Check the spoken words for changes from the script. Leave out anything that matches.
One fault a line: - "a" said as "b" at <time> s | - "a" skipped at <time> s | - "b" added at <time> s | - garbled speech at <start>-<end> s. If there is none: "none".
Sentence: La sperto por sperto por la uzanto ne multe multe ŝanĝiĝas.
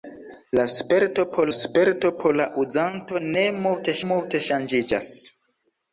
none